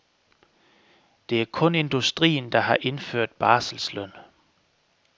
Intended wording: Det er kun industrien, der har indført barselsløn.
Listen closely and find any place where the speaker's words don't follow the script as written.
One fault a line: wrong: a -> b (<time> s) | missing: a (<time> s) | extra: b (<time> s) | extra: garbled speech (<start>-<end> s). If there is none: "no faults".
no faults